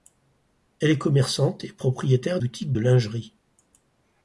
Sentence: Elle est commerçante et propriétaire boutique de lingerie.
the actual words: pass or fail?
pass